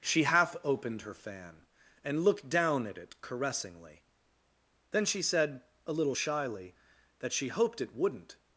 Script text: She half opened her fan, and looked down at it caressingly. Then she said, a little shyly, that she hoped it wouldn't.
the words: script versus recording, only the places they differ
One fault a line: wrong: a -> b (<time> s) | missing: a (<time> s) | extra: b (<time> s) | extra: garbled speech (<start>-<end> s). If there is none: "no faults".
no faults